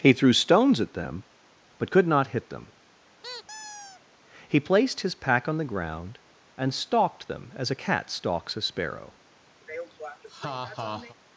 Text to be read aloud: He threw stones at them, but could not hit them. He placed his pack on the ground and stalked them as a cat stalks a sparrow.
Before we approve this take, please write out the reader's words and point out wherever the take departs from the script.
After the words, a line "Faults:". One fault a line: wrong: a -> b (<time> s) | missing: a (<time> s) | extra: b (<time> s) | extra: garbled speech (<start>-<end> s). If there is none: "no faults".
He threw stones at them, but could not hit them. He placed his pack on the ground and stalked them as a cat stalks a sparrow.
Faults:
no faults